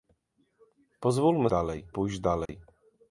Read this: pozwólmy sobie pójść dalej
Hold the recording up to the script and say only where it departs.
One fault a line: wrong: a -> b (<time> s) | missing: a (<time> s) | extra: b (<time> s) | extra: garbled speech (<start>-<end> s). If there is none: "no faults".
wrong: sobie -> dalej (1.5 s)